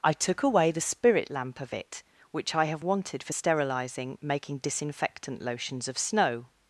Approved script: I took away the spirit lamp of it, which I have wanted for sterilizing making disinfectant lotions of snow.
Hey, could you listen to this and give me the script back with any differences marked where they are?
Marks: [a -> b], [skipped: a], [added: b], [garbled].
I took away the spirit lamp of it, which I have wanted for sterilizing making disinfectant lotions of snow.